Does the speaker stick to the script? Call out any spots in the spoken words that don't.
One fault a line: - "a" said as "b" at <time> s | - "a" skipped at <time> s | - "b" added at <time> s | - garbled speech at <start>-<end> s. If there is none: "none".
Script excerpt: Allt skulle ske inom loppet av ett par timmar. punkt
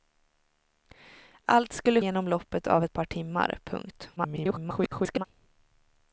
- "ske" skipped at 2.0 s
- garbled speech at 4.2-5.2 s